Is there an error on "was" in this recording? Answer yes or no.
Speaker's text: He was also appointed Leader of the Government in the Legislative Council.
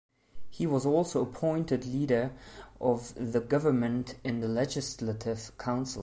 no